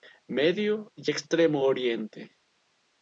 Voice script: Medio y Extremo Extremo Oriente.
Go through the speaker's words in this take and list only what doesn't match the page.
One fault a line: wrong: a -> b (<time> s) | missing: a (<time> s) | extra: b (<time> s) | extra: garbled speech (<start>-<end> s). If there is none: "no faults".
missing: Extremo (1.6 s)